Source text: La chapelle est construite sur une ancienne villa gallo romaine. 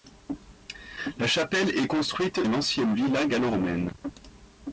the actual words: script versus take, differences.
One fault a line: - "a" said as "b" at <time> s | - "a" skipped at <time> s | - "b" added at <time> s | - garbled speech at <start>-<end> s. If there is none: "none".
- "sur" skipped at 2.5 s